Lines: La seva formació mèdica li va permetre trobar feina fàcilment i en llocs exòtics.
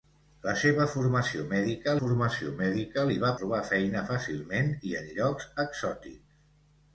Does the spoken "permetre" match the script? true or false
false